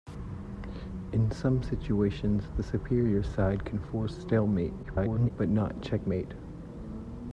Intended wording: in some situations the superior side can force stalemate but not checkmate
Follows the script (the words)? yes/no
no